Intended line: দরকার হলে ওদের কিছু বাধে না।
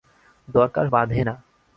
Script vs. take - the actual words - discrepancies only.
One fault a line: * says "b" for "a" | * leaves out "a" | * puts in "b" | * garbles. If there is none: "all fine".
* leaves out "হলে ওদের কিছু"